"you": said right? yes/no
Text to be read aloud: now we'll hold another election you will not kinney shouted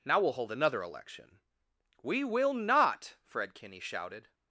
no